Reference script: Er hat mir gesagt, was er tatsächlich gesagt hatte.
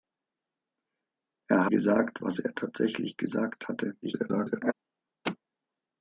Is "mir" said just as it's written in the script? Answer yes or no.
no